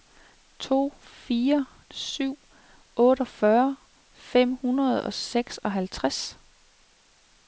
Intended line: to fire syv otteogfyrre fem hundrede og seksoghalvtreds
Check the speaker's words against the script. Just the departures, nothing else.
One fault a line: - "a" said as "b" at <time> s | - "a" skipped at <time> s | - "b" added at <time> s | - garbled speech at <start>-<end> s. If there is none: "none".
none